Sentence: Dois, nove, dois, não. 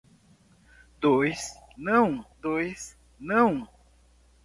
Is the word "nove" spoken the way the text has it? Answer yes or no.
no